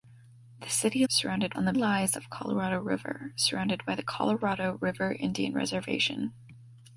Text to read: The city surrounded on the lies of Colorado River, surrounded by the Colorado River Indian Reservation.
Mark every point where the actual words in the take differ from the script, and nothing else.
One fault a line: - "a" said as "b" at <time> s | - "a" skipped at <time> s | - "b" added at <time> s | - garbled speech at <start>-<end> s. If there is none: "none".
none